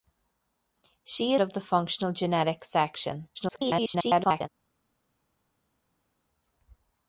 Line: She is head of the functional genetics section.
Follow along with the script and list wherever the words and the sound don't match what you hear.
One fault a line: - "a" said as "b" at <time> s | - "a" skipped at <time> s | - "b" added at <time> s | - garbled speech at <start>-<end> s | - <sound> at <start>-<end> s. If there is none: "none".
- "is head" skipped at 1.4 s
- garbled speech at 3.3-4.5 s